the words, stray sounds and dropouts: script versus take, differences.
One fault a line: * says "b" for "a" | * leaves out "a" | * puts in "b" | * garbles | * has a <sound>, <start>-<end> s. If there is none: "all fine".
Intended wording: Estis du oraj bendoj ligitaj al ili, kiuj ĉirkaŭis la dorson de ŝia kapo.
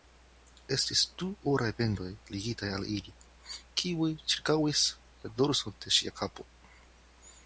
all fine